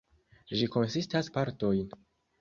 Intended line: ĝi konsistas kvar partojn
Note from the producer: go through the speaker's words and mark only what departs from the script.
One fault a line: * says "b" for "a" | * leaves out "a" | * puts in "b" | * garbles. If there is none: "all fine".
* leaves out "kvar"